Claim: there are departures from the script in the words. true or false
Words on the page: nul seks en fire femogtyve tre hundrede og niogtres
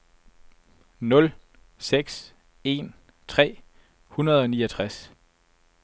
true